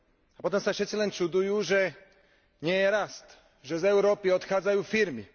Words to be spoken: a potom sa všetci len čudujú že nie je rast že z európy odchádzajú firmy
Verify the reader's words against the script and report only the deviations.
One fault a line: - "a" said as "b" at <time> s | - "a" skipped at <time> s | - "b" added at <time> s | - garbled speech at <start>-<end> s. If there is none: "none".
none